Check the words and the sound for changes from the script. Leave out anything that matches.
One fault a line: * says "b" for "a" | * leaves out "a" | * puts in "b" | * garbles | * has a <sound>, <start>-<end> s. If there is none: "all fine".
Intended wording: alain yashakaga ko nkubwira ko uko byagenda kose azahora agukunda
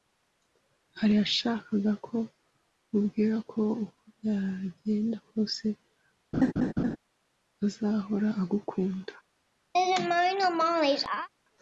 * has a laugh, 6.3-7.0 s
* has a laugh, 9.7-11.3 s